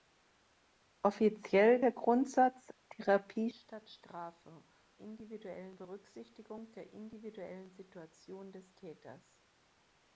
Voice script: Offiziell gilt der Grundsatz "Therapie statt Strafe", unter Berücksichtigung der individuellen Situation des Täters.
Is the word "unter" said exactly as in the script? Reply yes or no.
no